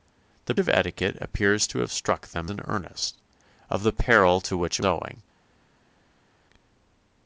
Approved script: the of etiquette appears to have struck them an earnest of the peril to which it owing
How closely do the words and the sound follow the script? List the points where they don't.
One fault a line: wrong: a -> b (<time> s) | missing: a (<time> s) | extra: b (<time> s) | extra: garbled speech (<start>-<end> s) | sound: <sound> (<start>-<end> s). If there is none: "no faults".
no faults